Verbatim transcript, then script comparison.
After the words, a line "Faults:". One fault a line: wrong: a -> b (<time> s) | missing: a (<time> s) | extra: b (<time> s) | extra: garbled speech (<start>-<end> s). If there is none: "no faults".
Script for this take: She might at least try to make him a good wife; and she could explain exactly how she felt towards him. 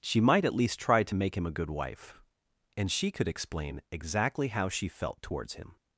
She might at least try to make him a good wife; and she could explain exactly how she felt towards him.
Faults:
no faults